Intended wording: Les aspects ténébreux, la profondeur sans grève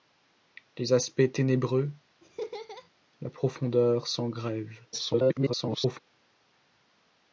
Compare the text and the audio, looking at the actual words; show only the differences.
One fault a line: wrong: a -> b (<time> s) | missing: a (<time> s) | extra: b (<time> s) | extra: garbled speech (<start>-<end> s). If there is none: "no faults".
extra: garbled speech (4.9-6.0 s)